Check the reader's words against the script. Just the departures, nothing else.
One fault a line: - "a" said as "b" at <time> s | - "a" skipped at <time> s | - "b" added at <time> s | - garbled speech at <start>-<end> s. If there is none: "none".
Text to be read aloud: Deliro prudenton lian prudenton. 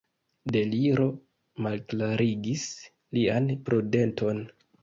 - "prudenton" said as "malklarigis" at 1.7 s